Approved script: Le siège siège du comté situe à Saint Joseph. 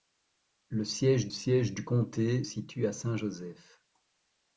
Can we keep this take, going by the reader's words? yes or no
yes